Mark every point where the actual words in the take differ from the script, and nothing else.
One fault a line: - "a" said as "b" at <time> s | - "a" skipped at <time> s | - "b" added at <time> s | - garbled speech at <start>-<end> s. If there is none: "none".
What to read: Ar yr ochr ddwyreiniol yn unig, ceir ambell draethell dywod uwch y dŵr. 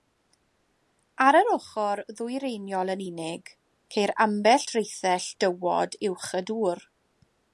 none